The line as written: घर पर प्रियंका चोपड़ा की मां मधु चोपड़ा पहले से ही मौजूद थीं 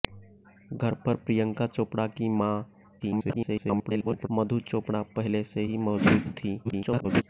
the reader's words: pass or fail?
fail